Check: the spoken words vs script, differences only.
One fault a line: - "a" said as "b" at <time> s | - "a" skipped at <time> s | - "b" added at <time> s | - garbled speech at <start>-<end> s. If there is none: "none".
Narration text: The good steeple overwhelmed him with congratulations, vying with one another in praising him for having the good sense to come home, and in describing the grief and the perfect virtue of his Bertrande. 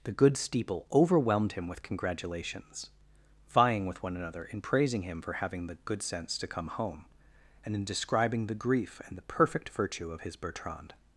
none